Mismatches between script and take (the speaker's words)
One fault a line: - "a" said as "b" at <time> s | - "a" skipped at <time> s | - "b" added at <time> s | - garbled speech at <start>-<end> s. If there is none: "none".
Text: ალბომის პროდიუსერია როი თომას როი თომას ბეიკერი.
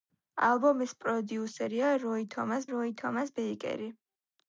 none